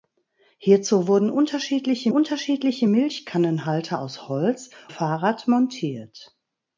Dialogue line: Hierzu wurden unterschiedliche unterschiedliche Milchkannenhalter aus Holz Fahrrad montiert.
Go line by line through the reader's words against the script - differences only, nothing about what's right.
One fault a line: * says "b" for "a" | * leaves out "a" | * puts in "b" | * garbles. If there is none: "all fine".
all fine